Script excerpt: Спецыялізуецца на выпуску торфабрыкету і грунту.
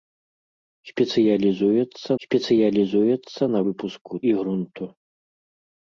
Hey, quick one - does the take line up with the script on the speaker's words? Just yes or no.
no